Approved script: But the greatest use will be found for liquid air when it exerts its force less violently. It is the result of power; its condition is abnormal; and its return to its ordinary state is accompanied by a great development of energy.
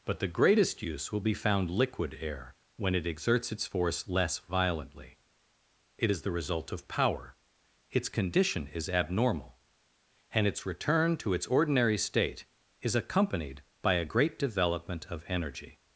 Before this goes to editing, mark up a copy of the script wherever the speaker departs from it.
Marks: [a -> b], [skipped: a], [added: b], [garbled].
But the greatest use will be found [skipped: for] liquid air when it exerts its force less violently. It is the result of power; its condition is abnormal; and its return to its ordinary state is accompanied by a great development of energy.